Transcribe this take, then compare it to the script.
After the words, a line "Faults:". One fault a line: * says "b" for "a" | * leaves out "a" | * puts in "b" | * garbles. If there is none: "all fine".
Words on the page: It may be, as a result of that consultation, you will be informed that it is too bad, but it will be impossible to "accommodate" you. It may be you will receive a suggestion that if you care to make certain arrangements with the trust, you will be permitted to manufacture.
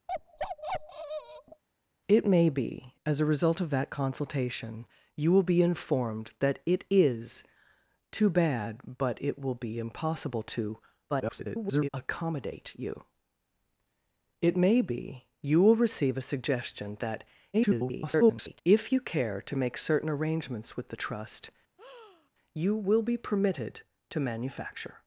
It may be, as a result of that consultation, you will be informed that it is too bad, but it will be impossible to [garbled] "accommodate" you. It may be you will receive a suggestion that [garbled] if you care to make certain arrangements with the trust, you will be permitted to manufacture.
Faults:
* garbles
* garbles